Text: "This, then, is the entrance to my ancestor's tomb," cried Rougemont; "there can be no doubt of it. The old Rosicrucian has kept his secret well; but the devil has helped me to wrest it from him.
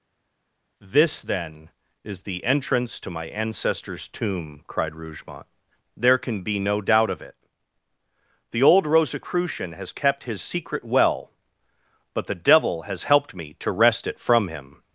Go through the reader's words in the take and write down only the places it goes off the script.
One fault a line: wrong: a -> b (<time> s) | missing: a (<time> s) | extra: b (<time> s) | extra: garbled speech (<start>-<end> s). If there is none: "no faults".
no faults